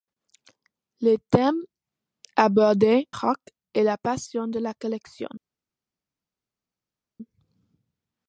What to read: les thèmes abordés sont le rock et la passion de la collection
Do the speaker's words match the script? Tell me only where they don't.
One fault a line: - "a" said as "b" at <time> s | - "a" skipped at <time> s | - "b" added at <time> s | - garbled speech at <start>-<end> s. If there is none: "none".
- "sont le" skipped at 3.1 s